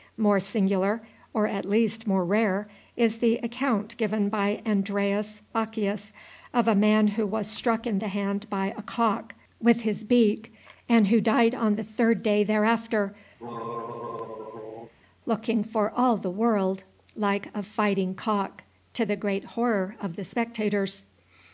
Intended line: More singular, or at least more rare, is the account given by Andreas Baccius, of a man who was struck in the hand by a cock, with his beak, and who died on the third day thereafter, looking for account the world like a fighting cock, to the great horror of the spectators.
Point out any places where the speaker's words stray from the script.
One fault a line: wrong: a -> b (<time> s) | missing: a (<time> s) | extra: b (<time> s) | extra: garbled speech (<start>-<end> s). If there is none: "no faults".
wrong: account -> all (15.9 s)